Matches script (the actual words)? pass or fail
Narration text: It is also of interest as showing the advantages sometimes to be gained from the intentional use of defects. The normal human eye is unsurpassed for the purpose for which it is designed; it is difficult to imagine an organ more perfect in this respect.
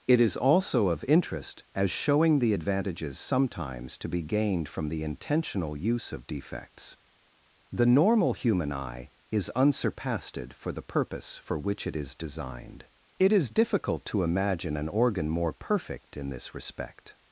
pass